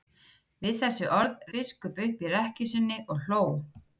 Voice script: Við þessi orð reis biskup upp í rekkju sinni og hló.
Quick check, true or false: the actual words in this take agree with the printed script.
false